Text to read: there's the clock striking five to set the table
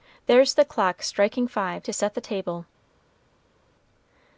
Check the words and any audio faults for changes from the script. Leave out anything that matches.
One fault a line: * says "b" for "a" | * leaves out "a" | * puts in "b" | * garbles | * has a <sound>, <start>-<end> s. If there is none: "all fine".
all fine